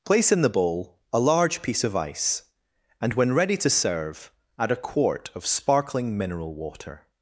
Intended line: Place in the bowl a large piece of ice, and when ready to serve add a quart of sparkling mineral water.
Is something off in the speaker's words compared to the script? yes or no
no